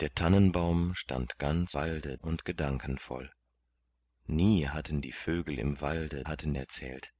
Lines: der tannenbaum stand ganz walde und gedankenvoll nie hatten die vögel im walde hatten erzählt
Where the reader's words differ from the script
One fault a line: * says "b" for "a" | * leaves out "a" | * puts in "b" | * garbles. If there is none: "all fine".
all fine